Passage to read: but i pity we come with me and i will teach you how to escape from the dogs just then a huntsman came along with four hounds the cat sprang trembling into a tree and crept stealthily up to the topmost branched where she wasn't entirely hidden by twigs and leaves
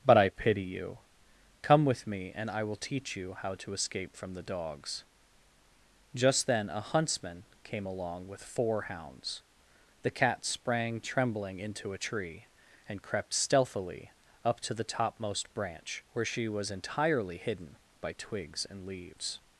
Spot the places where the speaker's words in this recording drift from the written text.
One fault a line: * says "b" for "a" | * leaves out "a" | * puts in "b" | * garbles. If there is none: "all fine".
* says "you" for "we"
* says "branch" for "branched"
* says "was" for "wasn't"